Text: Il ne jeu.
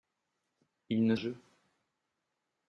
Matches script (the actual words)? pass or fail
pass